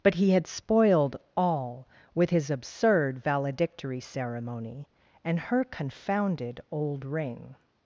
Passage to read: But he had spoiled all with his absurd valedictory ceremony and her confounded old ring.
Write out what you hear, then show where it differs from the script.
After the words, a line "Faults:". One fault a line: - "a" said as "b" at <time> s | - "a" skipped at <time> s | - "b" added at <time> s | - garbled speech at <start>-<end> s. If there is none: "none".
But he had spoiled all with his absurd valedictory ceremony and her confounded old ring.
Faults:
none